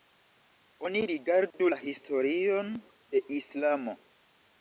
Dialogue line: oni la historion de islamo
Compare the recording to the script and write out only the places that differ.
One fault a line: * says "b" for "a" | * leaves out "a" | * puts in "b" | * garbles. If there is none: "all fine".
* puts in "rigardu"